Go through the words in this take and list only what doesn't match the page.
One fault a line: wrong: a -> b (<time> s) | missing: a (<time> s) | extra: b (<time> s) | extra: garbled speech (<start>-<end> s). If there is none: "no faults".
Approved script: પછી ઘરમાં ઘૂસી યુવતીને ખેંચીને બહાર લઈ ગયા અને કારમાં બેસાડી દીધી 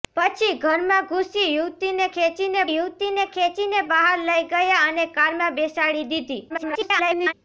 extra: યુવતીને ખેંચીને (2.7 s)
extra: garbled speech (6.5-7.3 s)